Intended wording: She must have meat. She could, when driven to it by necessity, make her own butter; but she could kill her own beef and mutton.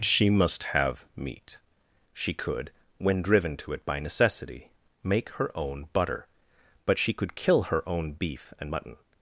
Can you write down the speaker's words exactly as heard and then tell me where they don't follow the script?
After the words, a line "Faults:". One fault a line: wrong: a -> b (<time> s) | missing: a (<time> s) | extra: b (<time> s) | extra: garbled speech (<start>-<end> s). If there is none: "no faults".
She must have meat. She could, when driven to it by necessity, make her own butter; but she could kill her own beef and mutton.
Faults:
no faults